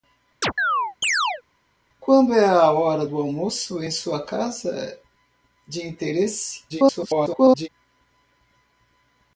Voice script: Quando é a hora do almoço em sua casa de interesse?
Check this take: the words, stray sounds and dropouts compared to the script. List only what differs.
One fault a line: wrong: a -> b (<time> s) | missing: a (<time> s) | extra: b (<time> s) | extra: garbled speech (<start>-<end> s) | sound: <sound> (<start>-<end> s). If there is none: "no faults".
sound: chirp (0.4-1.4 s)
extra: garbled speech (6.7-7.7 s)